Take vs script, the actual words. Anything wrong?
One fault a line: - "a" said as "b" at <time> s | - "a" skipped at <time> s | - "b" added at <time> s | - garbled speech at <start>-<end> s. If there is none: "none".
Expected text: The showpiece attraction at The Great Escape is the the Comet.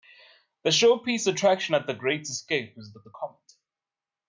none